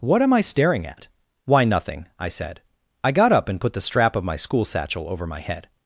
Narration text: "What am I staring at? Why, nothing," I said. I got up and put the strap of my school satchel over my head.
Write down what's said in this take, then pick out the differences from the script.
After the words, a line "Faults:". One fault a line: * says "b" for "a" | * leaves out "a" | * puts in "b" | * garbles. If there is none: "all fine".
"What am I staring at? Why, nothing," I said. I got up and put the strap of my school satchel over my head.
Faults:
all fine